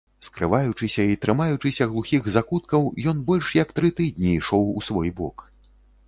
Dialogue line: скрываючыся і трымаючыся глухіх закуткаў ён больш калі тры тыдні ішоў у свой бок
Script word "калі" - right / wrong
wrong